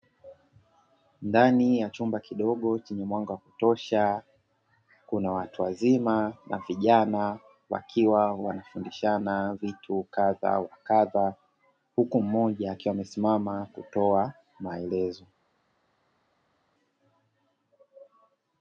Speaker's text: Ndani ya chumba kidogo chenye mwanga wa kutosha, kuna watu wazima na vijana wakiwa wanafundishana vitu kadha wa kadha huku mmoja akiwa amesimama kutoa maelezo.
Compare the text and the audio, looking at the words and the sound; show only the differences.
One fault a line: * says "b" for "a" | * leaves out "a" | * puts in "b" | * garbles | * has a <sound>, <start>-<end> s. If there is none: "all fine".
all fine